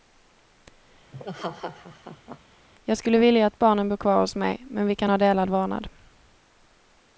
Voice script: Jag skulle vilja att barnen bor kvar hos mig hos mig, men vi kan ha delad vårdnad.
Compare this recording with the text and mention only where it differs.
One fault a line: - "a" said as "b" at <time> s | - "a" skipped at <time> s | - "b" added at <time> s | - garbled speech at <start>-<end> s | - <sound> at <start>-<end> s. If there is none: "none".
- laugh at 1.1-2.4 s
- "hos mig" skipped at 4.7 s